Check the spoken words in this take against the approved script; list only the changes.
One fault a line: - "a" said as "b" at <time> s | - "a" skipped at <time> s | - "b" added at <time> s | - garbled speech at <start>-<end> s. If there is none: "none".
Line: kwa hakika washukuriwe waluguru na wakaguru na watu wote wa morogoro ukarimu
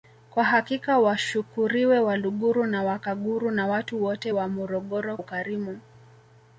none